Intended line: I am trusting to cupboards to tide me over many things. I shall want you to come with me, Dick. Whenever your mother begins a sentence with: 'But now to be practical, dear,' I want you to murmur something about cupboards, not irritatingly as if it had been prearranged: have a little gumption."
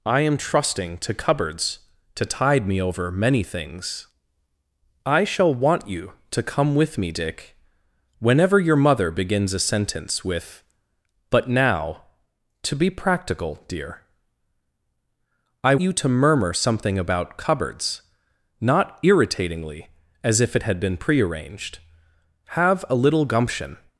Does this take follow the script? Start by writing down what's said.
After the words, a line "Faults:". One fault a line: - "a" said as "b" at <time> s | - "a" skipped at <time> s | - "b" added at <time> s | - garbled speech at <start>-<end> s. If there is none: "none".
I am trusting to cupboards to tide me over many things. I shall want you to come with me, Dick. Whenever your mother begins a sentence with: 'But now to be practical, dear,' I you to murmur something about cupboards, not irritatingly as if it had been prearranged: have a little gumption."
Faults:
- "want" skipped at 15.8 s